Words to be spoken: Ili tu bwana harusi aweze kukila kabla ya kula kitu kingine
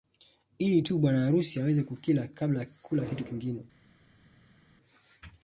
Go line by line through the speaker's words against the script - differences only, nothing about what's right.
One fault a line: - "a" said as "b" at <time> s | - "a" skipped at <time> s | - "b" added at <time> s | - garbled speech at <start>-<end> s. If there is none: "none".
none